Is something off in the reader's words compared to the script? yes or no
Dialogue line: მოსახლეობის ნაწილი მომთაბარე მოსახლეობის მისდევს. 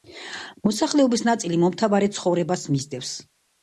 yes